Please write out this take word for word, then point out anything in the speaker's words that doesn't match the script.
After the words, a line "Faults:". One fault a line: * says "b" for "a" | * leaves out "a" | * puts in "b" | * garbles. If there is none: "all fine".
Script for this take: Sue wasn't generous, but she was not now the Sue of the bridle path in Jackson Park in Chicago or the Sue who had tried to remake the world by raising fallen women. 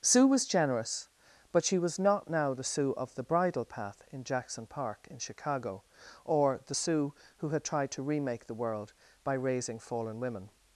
Sue was generous, but she was not now the Sue of the bridle path in Jackson Park in Chicago or the Sue who had tried to remake the world by raising fallen women.
Faults:
* says "was" for "wasn't"